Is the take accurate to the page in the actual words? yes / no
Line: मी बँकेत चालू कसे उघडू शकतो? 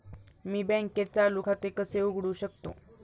no